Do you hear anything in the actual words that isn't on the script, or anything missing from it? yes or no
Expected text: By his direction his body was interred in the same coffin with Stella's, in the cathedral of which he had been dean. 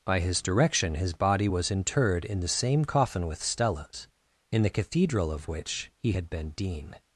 no